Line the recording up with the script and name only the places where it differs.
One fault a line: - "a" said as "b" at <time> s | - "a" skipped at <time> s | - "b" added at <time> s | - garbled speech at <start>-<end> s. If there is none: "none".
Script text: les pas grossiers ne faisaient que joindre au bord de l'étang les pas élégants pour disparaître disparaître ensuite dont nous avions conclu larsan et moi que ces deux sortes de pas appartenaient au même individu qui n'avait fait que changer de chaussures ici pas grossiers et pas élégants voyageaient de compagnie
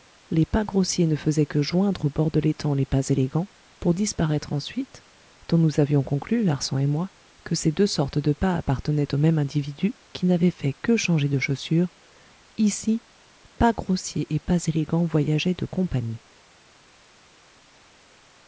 - "disparaître" skipped at 4.5 s